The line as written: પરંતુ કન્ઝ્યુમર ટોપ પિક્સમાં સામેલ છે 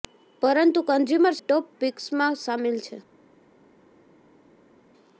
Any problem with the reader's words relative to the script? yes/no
no